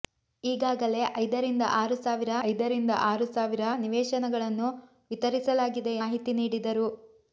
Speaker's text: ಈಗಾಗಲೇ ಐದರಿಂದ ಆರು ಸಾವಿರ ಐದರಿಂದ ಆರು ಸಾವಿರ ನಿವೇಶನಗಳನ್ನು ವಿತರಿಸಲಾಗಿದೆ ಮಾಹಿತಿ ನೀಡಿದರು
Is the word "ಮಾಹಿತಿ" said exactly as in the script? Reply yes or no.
yes